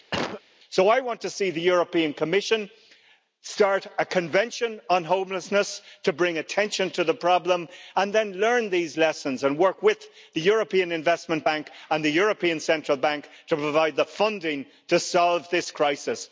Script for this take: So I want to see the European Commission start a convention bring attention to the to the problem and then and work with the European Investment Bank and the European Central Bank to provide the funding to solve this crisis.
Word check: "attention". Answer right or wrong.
wrong